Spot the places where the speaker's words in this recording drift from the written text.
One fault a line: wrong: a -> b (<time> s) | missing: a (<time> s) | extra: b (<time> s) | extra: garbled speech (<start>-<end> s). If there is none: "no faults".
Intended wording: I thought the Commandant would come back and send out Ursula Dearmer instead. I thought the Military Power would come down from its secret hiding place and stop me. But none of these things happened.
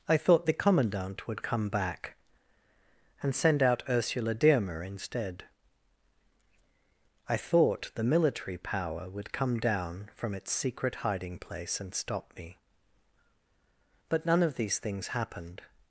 no faults